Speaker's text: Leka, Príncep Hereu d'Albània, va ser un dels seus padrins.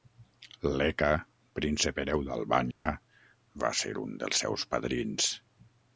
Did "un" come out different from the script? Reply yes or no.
no